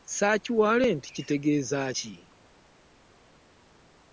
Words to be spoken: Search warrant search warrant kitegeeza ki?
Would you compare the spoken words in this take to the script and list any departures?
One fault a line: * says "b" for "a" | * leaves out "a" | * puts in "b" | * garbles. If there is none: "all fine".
* leaves out "search warrant"